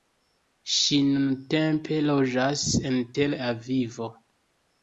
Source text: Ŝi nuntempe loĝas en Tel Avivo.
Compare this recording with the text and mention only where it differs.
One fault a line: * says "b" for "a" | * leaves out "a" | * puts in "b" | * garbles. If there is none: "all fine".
all fine